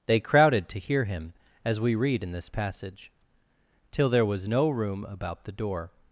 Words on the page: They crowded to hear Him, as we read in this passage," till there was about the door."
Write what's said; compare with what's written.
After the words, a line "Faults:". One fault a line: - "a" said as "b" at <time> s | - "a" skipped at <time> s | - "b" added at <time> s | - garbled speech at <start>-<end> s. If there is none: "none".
They crowded to hear Him, as we read in this passage," till there was no room about the door."
Faults:
- "no room" added at 4.5 s